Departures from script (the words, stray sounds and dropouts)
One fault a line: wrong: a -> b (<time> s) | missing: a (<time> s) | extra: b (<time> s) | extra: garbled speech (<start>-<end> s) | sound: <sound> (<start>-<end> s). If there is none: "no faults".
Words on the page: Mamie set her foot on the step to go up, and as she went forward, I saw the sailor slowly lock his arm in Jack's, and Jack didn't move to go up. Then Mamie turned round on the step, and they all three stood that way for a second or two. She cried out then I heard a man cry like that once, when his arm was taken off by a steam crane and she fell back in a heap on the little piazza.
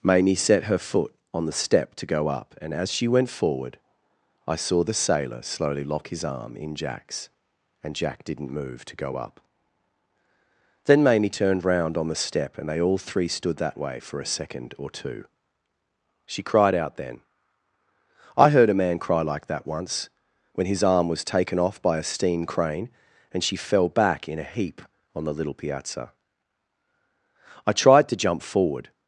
extra: I tried to jump forward (27.7 s)